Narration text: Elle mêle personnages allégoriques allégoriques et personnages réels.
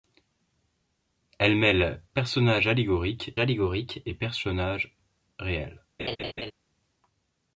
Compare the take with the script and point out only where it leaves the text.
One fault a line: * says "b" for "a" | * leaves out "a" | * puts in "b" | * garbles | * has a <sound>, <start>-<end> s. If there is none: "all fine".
* has a laugh, 6.0-6.5 s